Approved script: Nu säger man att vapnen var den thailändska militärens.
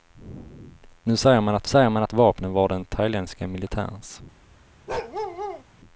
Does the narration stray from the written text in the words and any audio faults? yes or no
yes